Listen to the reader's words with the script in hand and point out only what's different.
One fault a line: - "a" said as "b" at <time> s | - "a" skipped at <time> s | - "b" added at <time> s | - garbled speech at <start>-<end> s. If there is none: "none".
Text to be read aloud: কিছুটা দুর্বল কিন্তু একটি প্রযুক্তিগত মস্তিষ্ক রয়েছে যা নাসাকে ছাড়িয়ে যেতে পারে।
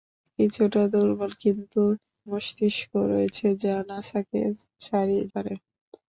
- "একটি প্রযুক্তিগত" skipped at 1.8 s
- "যেতে" skipped at 5.2 s